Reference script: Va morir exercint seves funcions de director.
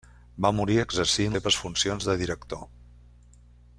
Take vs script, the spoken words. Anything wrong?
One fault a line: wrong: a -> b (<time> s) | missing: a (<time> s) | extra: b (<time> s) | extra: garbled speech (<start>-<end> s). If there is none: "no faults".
no faults